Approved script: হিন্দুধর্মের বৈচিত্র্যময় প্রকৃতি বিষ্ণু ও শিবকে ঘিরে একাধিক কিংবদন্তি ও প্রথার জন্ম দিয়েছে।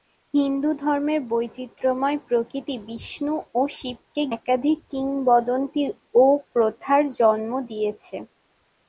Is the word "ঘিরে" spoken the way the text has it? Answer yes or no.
no